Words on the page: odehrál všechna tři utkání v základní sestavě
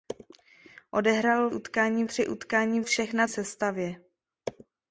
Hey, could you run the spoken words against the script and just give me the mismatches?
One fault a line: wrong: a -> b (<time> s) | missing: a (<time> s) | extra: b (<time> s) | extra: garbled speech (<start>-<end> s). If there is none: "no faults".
wrong: všechna -> utkání (1.5 s)
wrong: základní -> všechna (2.8 s)